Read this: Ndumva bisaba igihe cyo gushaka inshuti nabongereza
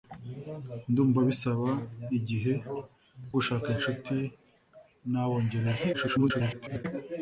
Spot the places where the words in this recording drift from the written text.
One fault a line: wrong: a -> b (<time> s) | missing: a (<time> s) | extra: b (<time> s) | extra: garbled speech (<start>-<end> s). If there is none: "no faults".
missing: cyo (2.5 s)
extra: garbled speech (5.9-6.9 s)